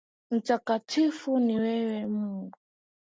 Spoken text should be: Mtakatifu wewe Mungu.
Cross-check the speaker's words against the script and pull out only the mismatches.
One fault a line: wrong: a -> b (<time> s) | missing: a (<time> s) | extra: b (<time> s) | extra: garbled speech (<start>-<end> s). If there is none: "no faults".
extra: ni (1.4 s)